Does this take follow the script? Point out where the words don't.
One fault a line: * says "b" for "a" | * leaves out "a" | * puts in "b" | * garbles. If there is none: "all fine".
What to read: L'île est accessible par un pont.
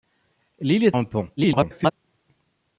* leaves out "accessible par"
* garbles